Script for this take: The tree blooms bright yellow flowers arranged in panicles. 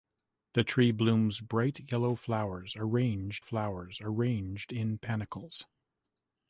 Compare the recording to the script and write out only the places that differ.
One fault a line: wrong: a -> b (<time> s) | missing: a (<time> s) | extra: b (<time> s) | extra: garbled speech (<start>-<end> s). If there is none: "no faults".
extra: flowers arranged (3.4 s)